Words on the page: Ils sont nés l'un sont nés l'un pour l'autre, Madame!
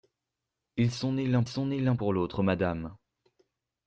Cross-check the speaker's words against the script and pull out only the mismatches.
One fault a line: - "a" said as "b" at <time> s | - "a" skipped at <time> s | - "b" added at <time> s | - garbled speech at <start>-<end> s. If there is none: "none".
none